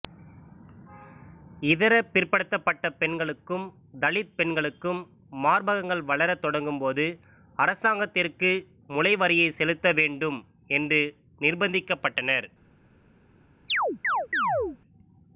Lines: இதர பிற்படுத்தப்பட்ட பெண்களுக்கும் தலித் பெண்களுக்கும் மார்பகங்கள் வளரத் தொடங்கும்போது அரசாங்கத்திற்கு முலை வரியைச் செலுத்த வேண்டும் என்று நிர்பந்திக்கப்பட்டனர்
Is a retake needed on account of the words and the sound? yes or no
yes